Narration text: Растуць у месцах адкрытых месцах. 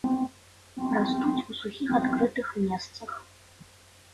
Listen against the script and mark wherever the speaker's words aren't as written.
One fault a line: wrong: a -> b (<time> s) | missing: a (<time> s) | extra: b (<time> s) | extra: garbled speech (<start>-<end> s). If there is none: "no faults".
wrong: месцах -> сухіх (1.6 s)